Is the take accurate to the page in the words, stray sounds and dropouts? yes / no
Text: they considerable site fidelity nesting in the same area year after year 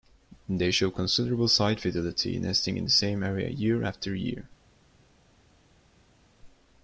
no